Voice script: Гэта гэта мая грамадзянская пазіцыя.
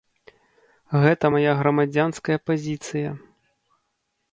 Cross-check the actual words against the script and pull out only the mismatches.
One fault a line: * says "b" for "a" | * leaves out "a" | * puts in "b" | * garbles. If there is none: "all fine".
* leaves out "гэта"